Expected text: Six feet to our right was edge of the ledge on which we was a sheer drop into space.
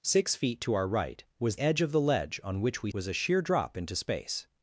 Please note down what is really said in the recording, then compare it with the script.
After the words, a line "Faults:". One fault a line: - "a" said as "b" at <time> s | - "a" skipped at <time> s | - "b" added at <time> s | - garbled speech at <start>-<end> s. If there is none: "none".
Six feet to our right was edge of the ledge on which we was a sheer drop into space.
Faults:
none